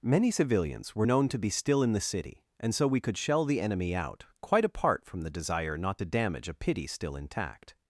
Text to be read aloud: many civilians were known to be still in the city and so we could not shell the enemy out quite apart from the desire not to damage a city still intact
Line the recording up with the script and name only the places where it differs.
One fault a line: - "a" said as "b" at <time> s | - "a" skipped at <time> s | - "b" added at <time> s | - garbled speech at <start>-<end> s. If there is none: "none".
- "not" skipped at 3.2 s
- "city" said as "pity" at 6.5 s